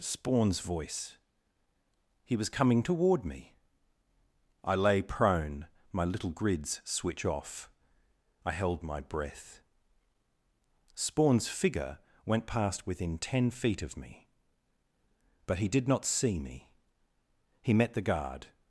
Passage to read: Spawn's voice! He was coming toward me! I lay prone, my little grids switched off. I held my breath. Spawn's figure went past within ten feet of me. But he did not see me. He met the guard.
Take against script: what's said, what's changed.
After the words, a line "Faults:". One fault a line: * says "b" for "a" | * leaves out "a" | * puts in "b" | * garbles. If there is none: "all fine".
Spawn's voice! He was coming toward me! I lay prone, my little grids switch off. I held my breath. Spawn's figure went past within ten feet of me. But he did not see me. He met the guard.
Faults:
* says "switch" for "switched"